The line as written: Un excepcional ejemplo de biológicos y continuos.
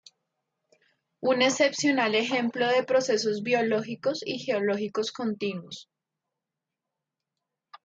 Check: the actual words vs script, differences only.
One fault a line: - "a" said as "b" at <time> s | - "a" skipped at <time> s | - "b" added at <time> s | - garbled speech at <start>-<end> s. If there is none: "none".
- "procesos" added at 2.8 s
- "geológicos" added at 4.4 s